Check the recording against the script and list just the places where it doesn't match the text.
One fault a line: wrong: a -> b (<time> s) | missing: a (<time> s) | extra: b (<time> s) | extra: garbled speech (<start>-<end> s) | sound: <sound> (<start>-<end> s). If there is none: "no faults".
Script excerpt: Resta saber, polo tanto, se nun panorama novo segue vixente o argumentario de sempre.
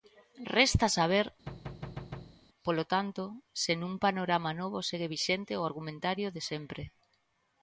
sound: thud (1.5-2.4 s)